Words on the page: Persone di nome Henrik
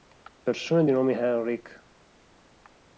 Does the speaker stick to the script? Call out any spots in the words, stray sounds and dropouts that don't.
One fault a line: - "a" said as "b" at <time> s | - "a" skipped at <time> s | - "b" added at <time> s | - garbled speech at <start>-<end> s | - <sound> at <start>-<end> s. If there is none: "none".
none